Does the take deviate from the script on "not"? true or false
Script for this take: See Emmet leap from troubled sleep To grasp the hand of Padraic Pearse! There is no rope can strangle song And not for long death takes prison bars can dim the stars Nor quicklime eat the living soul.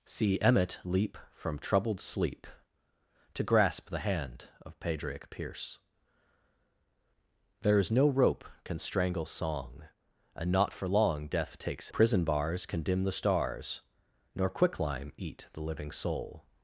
false